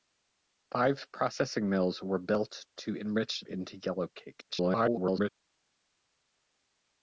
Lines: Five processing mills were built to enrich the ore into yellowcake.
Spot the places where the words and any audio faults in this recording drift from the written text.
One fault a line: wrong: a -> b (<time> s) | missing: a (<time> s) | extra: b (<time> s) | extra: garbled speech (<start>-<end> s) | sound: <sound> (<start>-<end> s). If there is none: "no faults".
missing: the ore (3.4 s)
extra: garbled speech (4.5-5.3 s)